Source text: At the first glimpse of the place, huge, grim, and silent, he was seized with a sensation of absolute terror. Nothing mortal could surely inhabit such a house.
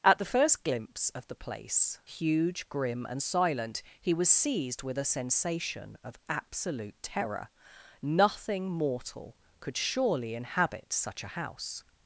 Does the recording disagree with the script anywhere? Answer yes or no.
no